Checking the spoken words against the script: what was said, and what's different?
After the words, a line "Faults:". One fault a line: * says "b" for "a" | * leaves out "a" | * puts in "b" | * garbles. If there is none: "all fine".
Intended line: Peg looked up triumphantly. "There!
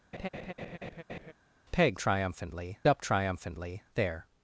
Peg triumphantly up triumphantly. "There!
Faults:
* says "triumphantly" for "looked"